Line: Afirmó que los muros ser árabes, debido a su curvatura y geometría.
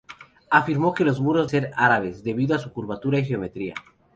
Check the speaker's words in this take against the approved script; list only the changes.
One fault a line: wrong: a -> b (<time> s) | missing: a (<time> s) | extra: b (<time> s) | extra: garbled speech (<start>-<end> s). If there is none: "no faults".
no faults